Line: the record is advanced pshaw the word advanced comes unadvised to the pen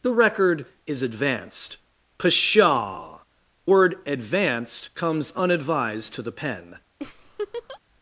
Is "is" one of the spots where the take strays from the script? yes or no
no